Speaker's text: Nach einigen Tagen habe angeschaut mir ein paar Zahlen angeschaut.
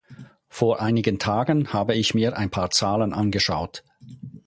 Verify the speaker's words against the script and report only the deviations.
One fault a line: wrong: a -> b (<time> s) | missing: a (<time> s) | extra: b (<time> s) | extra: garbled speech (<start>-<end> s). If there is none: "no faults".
wrong: Nach -> Vor (0.5 s)
wrong: angeschaut -> ich (1.9 s)